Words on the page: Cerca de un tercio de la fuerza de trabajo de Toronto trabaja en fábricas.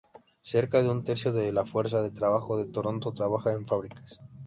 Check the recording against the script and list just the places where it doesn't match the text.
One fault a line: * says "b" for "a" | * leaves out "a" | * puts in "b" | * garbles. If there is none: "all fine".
all fine